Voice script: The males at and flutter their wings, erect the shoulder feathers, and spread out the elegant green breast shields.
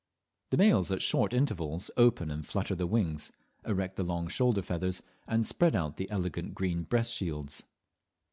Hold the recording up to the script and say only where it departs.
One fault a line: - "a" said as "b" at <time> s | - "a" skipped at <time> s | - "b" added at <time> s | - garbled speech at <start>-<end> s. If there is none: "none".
- "short intervals open" added at 1.0 s
- "long" added at 4.0 s